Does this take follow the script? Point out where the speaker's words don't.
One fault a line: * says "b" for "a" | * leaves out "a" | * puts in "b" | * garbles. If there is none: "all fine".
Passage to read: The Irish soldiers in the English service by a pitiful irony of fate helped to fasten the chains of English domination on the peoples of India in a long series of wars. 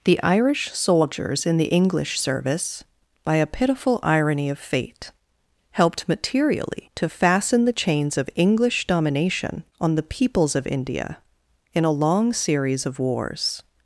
* puts in "materially"